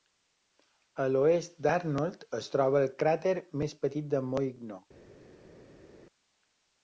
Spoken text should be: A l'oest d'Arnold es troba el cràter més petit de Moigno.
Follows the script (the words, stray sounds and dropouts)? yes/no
yes